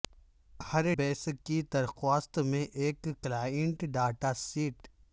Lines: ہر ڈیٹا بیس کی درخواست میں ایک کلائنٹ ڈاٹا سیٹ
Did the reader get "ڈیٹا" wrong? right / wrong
wrong